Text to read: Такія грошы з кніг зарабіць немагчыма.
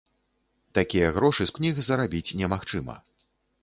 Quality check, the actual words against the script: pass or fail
pass